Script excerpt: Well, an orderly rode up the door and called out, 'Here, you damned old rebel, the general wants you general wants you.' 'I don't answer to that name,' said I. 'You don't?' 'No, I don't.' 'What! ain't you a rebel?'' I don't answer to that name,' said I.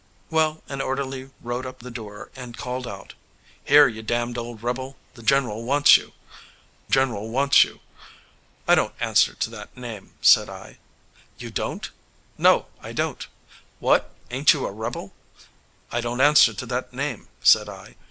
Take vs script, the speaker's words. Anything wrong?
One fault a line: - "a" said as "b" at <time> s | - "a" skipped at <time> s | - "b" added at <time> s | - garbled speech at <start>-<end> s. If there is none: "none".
none